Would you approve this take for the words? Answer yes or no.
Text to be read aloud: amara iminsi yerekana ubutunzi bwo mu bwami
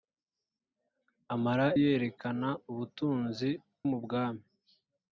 no